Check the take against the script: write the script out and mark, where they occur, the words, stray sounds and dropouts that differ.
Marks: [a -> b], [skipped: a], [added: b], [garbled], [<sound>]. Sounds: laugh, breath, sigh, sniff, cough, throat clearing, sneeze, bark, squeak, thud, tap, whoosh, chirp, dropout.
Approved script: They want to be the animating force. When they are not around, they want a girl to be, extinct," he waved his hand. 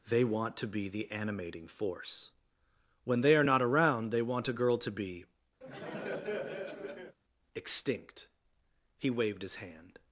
They want to be the animating force. When they are not around, they want a girl to be, [laugh] extinct," he waved his hand.